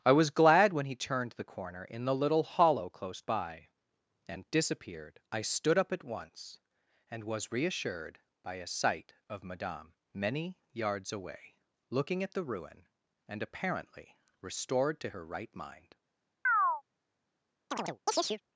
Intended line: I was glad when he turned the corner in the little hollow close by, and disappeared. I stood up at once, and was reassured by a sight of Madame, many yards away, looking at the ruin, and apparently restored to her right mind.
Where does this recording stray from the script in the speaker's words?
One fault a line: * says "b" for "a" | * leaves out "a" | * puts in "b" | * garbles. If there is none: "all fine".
all fine